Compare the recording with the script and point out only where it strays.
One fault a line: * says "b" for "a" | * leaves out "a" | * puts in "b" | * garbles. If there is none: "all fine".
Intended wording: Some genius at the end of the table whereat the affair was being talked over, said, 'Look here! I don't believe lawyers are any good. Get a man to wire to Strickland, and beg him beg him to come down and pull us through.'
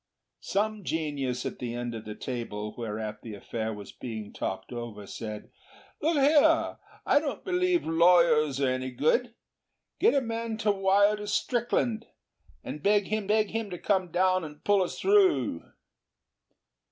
all fine